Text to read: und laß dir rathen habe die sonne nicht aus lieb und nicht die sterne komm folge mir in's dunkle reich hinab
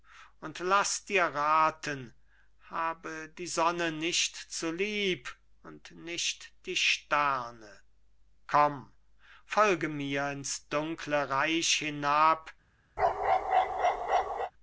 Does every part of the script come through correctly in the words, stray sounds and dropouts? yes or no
no